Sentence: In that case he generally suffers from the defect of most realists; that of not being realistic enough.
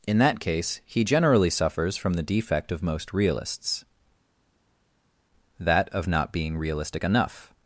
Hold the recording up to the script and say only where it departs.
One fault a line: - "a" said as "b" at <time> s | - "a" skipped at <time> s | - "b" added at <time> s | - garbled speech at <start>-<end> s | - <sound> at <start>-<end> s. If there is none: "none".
none